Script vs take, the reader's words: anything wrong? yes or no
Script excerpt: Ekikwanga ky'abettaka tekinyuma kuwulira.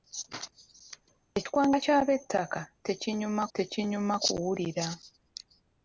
yes